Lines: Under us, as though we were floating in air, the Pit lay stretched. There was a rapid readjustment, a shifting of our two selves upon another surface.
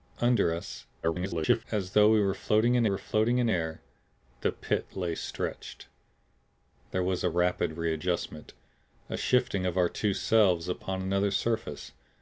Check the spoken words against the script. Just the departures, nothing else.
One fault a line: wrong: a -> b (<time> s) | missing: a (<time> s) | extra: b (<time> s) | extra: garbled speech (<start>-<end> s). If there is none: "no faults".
extra: garbled speech (1.0-1.6 s)
extra: were floating in (2.8 s)